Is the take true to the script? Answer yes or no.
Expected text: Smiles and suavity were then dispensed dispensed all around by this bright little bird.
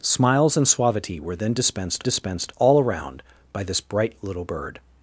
yes